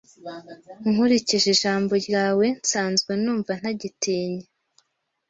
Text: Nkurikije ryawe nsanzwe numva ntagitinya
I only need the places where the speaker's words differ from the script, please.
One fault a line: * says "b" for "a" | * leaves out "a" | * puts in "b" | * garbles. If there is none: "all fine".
* puts in "ijambo"